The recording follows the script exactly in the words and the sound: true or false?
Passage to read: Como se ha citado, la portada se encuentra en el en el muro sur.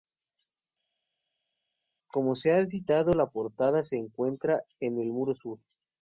false